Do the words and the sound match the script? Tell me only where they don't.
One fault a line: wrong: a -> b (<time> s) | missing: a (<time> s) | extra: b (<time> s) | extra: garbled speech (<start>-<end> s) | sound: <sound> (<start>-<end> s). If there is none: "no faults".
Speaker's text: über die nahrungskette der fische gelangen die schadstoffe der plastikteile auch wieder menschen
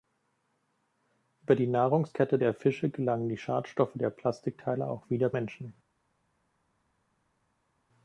no faults